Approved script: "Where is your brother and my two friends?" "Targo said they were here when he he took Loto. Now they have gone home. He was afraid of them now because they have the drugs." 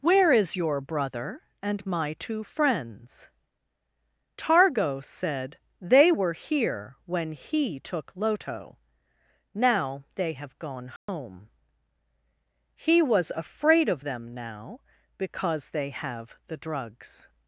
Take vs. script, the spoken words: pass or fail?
fail